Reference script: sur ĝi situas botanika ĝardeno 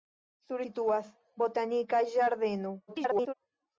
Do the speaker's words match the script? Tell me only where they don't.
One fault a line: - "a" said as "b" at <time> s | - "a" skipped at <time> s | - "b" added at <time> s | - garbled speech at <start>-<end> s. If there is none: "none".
- "ĝi" skipped at 0.6 s
- garbled speech at 2.9-3.3 s